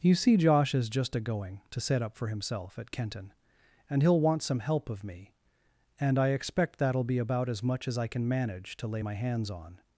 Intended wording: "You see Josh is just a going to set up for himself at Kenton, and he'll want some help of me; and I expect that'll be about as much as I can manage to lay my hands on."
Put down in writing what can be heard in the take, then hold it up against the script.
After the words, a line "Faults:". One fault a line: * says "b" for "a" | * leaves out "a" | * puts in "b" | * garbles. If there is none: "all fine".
"You see Josh is just a going to set up for himself at Kenton, and he'll want some help of me; and I expect that'll be about as much as I can manage to lay my hands on."
Faults:
all fine